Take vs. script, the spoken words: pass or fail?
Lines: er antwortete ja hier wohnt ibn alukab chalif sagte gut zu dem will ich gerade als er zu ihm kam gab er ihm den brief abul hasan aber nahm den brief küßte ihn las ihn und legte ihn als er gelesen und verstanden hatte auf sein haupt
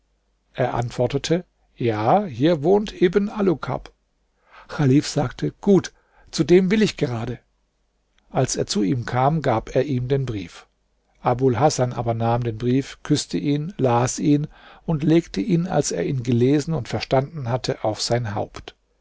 fail